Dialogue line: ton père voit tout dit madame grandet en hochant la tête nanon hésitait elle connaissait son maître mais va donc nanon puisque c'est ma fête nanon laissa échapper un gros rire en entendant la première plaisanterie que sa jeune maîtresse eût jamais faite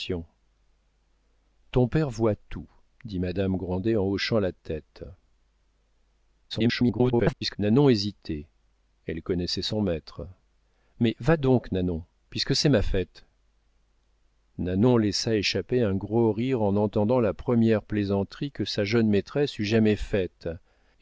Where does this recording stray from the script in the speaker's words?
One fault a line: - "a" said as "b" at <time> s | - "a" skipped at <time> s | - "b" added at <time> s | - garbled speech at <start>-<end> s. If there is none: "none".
- garbled speech at 6.5-7.6 s